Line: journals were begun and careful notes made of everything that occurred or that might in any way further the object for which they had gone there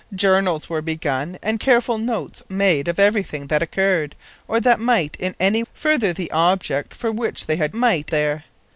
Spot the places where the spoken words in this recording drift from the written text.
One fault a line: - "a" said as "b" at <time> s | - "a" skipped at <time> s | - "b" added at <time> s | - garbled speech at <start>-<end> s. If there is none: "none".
- "way" skipped at 5.6 s
- "gone" said as "might" at 7.7 s